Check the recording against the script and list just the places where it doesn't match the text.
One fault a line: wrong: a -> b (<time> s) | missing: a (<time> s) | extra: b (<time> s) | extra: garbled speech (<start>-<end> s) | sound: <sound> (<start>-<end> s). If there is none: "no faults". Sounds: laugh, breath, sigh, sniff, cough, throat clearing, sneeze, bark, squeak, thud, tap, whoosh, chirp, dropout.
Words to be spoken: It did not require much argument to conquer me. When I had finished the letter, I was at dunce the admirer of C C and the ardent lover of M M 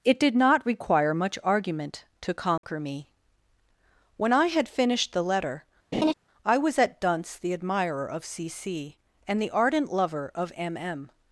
sound: dropout (2.6-2.6 s)
sound: laugh (5.9-6.1 s)